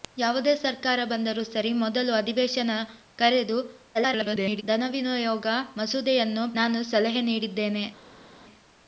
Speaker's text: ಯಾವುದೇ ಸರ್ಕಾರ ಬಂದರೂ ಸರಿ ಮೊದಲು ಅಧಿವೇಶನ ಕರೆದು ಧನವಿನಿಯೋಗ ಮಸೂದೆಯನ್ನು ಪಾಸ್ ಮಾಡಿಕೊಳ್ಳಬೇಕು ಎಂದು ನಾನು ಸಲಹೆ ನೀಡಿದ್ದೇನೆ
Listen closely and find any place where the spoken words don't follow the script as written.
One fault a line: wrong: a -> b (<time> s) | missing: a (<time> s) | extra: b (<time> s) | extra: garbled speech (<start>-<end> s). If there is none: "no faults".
extra: garbled speech (3.9-4.6 s)
missing: ಪಾಸ್ ಮಾಡಿಕೊಳ್ಳಬೇಕು ಎಂದು (6.5 s)